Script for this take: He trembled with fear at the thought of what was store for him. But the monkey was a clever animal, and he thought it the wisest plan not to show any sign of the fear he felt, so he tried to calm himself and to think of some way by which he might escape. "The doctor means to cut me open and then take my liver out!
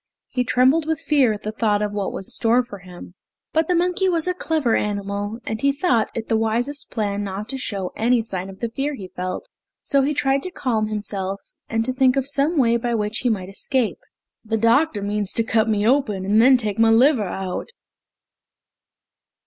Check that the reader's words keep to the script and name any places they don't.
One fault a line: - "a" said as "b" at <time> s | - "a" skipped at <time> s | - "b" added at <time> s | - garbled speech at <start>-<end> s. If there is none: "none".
none